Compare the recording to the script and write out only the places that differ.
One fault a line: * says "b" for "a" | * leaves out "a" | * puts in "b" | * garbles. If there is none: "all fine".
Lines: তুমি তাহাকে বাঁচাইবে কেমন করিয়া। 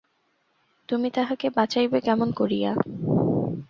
all fine